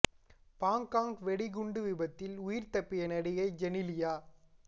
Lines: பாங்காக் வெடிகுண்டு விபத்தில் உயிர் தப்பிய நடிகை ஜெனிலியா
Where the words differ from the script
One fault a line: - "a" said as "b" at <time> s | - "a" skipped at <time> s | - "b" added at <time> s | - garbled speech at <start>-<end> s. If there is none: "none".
none